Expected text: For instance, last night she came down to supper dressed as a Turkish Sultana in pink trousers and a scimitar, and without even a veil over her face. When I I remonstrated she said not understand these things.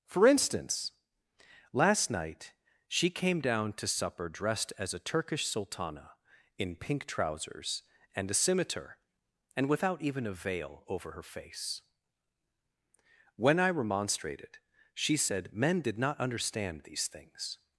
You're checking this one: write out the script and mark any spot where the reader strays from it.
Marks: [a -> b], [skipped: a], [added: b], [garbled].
For instance, last night she came down to supper dressed as a Turkish Sultana in pink trousers and a scimitar, and without even a veil over her face. When I [skipped: I] remonstrated she said [added: men did] not understand these things.